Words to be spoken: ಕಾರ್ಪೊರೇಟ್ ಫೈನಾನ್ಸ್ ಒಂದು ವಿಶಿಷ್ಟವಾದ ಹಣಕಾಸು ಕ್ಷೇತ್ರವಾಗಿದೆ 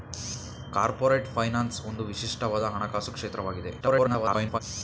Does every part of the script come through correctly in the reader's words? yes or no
no